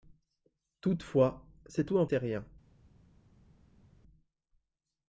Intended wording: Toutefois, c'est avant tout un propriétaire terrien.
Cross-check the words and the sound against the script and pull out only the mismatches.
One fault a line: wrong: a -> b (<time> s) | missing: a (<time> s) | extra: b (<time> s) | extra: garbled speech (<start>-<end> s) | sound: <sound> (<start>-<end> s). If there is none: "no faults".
missing: avant (1.9 s)
missing: propriétaire (2.1 s)